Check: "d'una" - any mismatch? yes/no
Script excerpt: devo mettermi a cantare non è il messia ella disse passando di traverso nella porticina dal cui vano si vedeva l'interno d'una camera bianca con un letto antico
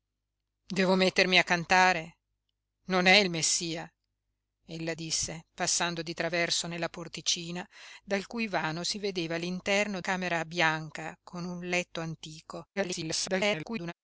yes